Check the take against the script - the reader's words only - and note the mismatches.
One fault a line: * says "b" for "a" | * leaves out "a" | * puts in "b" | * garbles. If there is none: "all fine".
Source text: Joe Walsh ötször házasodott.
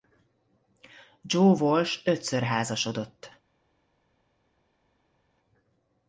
all fine